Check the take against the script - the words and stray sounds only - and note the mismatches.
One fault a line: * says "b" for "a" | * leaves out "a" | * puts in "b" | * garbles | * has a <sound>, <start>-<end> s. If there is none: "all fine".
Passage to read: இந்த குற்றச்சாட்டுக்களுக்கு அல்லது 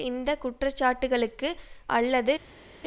all fine